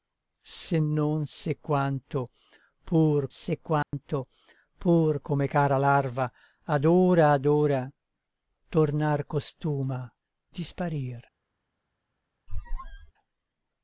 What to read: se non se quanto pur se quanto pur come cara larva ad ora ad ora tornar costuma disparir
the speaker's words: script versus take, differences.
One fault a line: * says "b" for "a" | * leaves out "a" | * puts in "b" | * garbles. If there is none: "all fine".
all fine